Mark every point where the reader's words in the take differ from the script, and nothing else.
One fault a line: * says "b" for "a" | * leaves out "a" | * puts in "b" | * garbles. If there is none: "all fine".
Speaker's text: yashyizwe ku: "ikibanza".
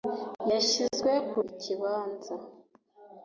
all fine